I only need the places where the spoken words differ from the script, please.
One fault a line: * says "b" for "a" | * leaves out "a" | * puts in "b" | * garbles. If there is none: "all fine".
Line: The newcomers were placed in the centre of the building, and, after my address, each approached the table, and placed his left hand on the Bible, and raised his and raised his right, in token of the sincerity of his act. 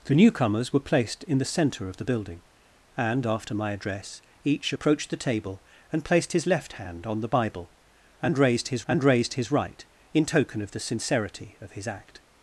all fine